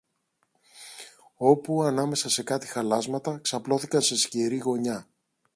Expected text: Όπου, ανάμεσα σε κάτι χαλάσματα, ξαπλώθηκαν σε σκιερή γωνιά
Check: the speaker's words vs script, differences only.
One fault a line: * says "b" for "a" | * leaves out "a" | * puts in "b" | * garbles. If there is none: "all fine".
all fine